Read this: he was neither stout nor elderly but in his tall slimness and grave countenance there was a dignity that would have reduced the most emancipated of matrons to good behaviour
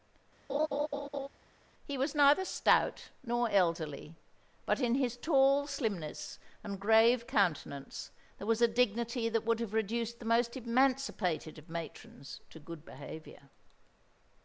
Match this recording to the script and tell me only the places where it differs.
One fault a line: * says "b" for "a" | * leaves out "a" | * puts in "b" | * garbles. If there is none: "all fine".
all fine